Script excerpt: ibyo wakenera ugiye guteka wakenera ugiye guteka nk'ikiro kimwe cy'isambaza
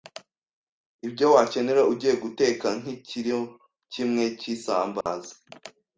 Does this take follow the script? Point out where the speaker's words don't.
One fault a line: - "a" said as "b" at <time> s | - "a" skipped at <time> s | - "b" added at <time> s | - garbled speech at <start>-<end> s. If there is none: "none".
- "wakenera ugiye guteka" skipped at 2.7 s